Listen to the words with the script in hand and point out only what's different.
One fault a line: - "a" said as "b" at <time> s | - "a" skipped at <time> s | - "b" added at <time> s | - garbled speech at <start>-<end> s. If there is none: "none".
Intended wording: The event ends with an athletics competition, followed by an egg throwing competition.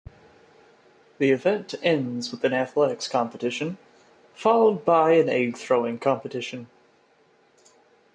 none